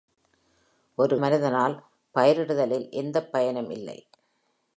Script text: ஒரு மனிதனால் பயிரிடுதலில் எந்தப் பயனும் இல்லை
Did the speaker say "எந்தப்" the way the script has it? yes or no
yes